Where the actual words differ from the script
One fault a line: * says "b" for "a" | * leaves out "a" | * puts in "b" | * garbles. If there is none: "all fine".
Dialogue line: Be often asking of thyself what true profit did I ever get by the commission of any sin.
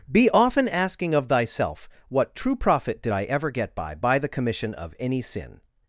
* puts in "by"